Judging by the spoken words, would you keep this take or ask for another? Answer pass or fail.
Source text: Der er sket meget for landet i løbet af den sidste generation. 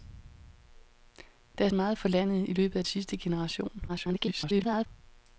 fail